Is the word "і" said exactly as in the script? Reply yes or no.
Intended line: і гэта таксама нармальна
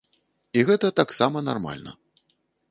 yes